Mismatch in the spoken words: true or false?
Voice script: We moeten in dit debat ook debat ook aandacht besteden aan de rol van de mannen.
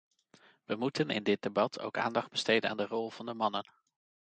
true